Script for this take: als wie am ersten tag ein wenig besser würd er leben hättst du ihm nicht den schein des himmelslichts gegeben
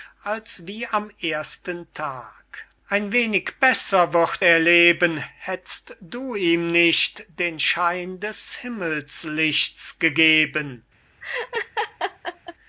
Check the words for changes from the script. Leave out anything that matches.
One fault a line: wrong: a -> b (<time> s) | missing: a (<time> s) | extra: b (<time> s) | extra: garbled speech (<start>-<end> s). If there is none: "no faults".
no faults